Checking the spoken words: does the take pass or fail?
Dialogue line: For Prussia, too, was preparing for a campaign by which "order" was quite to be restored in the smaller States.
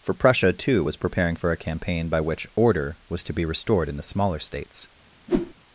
fail